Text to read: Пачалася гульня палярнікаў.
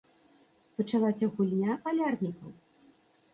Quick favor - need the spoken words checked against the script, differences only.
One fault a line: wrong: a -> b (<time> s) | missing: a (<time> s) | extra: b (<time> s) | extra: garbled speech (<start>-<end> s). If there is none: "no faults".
no faults